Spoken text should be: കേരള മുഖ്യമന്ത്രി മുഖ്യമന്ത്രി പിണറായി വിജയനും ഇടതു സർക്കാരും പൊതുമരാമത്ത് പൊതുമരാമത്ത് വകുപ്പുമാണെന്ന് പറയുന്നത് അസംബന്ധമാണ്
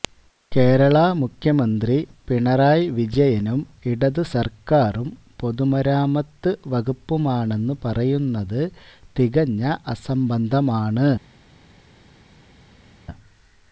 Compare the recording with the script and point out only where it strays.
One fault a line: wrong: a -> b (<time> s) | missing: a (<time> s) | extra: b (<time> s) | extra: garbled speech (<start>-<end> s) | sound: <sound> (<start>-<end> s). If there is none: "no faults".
missing: മുഖ്യമന്ത്രി (2.0 s)
missing: പൊതുമരാമത്ത് (6.5 s)
extra: തികഞ്ഞ (9.2 s)